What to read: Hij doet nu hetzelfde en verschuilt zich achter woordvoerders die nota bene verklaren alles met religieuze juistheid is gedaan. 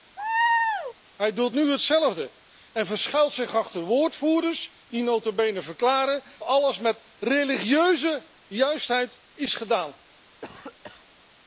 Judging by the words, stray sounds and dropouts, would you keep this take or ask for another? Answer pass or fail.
fail